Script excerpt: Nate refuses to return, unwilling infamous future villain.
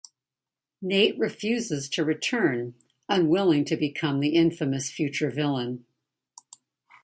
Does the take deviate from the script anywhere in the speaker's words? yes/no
yes